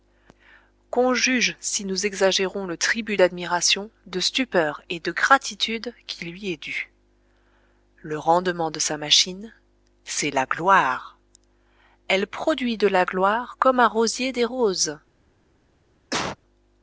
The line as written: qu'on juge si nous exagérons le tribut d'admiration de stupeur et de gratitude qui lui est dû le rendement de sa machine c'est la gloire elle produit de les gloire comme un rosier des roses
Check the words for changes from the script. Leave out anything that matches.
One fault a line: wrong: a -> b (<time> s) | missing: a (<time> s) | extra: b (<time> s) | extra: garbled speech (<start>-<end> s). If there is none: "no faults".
wrong: les -> la (12.9 s)